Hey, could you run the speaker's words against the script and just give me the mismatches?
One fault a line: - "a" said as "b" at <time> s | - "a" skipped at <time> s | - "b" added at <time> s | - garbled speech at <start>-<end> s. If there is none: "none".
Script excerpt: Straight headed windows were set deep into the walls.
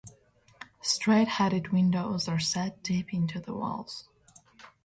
- "were" said as "are" at 2.3 s